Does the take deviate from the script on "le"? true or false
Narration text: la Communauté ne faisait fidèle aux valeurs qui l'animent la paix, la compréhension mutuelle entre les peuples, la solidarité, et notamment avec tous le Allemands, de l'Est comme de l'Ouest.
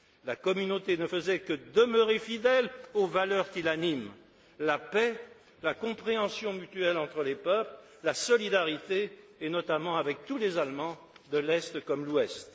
true